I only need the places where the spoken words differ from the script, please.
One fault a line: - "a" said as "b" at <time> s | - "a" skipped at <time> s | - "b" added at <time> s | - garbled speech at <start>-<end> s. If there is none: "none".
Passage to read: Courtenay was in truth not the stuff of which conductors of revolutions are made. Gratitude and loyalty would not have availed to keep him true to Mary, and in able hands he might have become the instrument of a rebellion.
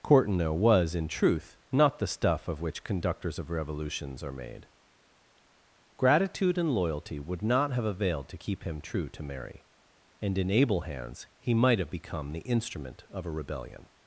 none